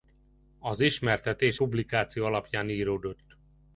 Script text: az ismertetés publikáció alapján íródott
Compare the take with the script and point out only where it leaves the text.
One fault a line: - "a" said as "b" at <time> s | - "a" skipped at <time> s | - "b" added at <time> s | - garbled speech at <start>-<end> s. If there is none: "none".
none